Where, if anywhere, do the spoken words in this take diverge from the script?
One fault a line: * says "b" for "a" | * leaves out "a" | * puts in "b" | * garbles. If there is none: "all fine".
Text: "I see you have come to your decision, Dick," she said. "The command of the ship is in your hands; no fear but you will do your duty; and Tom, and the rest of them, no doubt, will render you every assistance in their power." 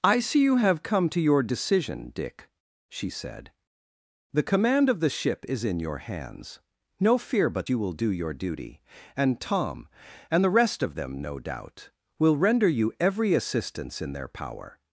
all fine